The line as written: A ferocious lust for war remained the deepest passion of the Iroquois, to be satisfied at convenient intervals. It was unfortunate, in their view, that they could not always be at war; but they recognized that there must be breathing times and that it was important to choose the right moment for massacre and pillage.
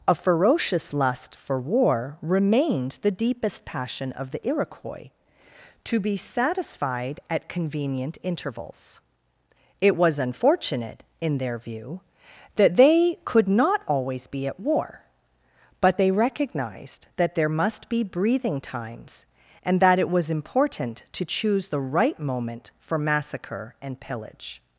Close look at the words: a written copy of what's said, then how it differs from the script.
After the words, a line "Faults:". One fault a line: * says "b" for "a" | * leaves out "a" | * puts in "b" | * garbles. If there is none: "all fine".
A ferocious lust for war remained the deepest passion of the Iroquois, to be satisfied at convenient intervals. It was unfortunate, in their view, that they could not always be at war; but they recognized that there must be breathing times and that it was important to choose the right moment for massacre and pillage.
Faults:
all fine